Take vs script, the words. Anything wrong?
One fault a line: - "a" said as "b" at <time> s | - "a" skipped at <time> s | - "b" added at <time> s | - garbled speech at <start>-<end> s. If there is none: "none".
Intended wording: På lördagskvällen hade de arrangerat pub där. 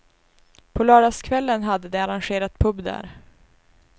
none